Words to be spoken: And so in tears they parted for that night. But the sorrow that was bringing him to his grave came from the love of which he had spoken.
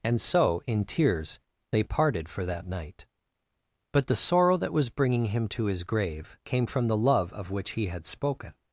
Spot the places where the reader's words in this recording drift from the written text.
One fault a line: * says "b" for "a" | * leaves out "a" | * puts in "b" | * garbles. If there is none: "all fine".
all fine